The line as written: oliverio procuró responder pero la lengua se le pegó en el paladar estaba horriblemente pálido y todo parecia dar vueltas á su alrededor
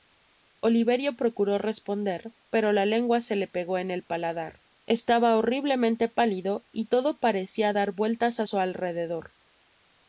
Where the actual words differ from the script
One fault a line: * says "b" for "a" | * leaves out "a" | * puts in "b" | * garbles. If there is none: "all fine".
all fine